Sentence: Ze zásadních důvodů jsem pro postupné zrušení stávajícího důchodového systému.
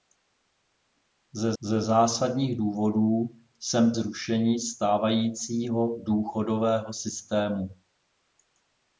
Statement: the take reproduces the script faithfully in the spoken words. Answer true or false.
false